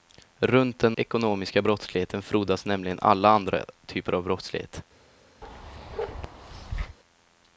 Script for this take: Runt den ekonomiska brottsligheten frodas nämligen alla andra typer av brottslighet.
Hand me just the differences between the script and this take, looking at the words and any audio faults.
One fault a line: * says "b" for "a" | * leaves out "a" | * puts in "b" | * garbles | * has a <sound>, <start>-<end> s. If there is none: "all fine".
* has a bark, 5.4-7.0 s